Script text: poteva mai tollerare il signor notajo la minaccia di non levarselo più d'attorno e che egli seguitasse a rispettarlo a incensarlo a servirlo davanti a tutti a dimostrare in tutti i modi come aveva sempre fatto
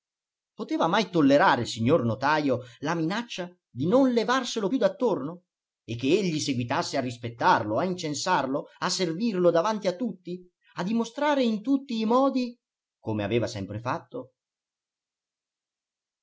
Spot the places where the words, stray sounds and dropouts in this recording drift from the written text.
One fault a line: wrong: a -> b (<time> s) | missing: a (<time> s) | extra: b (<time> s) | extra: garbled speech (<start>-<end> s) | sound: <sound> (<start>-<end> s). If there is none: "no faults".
no faults